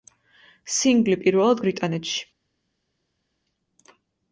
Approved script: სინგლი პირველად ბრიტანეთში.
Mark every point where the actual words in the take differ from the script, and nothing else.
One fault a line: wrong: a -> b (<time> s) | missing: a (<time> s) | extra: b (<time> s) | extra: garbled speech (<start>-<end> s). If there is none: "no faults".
no faults